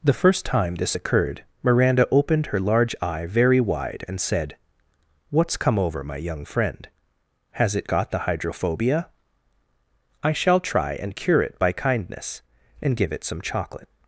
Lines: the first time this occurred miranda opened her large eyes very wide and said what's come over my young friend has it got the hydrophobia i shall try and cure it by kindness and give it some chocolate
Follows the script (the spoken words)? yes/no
no